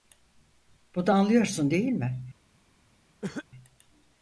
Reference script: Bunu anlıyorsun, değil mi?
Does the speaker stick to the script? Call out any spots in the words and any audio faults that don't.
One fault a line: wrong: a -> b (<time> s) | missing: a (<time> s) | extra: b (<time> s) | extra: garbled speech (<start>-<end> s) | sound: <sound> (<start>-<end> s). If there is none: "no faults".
sound: cough (3.2-3.5 s)